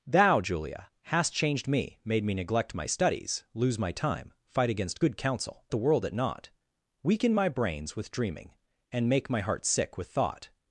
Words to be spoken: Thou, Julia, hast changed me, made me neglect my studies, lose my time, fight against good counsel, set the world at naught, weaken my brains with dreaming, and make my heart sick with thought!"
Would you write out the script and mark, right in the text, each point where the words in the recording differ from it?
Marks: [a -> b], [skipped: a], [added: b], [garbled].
Thou, Julia, hast changed me, made me neglect my studies, lose my time, fight against good counsel, [skipped: set] the world at naught, weaken my brains with dreaming, and make my heart sick with thought!"